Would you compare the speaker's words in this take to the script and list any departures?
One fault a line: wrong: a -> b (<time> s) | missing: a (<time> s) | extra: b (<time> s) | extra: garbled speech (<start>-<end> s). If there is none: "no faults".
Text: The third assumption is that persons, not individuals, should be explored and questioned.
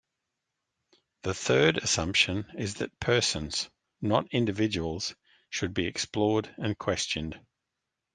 no faults